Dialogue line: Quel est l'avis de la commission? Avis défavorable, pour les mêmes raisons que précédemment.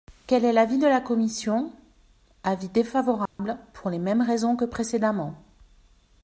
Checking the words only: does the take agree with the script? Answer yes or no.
yes